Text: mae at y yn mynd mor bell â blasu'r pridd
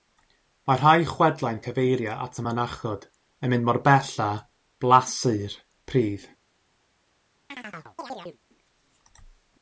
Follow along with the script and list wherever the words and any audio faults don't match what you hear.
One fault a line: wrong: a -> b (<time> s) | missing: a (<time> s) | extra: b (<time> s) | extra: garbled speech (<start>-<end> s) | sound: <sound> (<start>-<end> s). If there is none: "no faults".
extra: rhai chwedlau'n cyfeirio (0.8 s)
extra: mynachod (2.5 s)
sound: chirp (7.5-8.4 s)